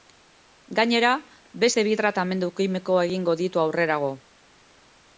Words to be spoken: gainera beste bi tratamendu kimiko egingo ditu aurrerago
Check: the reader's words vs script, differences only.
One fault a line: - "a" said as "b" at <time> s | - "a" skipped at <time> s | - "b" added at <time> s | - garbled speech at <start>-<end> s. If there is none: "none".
none